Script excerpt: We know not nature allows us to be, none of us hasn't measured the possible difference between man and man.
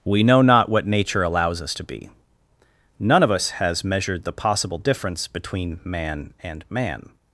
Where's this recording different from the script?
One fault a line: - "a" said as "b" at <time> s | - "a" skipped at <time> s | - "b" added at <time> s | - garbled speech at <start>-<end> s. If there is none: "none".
- "what" added at 0.7 s
- "hasn't" said as "has" at 3.5 s